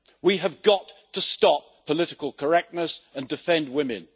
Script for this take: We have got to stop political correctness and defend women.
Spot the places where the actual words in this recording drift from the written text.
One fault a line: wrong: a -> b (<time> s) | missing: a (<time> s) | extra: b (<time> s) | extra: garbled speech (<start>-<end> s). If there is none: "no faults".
no faults